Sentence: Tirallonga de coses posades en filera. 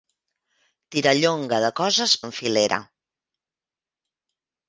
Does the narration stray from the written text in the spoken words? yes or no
yes